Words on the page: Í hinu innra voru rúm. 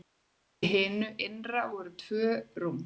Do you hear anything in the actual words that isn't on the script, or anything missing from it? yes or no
yes